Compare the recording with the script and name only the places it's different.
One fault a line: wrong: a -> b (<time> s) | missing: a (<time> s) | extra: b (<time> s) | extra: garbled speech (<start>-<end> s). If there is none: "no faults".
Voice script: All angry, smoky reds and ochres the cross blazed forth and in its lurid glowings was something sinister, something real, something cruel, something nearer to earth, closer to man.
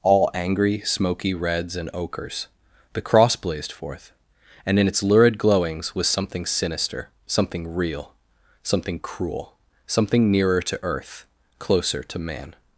no faults